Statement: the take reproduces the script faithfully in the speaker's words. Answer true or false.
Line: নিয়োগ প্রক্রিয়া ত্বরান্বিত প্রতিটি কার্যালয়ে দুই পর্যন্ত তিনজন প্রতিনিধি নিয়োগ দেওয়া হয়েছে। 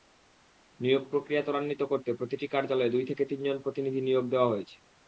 false